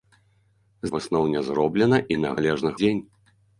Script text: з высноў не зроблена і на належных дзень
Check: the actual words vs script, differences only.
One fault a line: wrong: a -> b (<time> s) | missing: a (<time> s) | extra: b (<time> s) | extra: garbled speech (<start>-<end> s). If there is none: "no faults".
no faults